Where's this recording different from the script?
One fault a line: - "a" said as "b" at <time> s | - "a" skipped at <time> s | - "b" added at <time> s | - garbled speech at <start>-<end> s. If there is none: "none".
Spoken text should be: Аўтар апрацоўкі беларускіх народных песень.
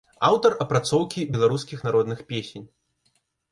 none